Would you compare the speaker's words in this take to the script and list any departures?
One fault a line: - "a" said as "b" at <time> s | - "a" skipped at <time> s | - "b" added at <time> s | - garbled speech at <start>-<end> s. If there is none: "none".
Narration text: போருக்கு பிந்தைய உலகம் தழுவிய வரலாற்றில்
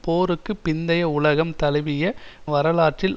none